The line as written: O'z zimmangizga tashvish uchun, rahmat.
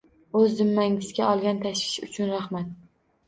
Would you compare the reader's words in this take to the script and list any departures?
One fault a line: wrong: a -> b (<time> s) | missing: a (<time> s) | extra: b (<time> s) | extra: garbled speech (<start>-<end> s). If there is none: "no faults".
extra: olgan (1.3 s)